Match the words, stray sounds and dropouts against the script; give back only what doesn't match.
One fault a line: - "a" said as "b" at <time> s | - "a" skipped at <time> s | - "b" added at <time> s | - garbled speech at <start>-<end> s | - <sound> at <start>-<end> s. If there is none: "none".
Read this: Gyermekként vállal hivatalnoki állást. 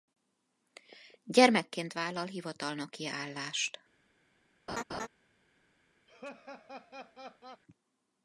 - laugh at 4.7-5.1 s
- laugh at 6.1-7.6 s